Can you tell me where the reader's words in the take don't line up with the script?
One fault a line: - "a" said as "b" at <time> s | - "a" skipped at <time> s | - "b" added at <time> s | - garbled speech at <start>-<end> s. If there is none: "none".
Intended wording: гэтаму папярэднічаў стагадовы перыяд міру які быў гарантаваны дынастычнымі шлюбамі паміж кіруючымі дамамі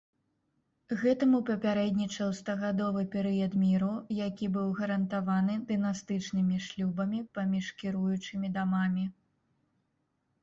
none